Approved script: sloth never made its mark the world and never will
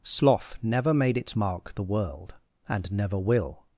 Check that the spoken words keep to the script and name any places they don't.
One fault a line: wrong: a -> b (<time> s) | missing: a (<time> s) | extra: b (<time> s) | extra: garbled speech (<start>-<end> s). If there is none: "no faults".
no faults